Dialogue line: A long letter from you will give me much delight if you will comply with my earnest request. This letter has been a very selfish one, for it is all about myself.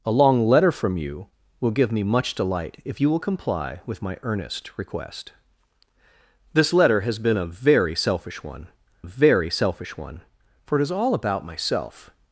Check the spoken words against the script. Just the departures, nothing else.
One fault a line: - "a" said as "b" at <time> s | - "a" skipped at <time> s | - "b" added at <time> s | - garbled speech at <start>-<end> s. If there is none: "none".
- "very selfish one" added at 9.0 s